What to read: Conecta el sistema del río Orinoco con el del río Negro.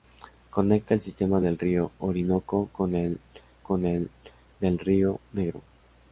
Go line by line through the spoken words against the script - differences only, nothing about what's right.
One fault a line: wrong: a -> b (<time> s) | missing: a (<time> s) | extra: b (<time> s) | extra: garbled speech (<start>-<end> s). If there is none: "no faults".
extra: con el (3.6 s)